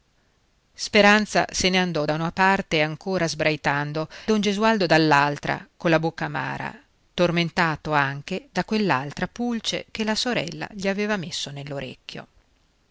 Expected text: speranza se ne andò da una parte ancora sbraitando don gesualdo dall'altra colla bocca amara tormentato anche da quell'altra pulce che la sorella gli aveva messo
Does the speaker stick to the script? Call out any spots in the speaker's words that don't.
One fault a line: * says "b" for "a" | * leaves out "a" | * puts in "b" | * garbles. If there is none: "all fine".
all fine